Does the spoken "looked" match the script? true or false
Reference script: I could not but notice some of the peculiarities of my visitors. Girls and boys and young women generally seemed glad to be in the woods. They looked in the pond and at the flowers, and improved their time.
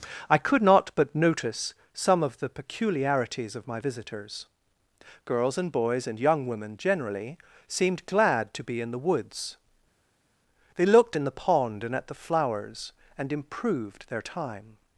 true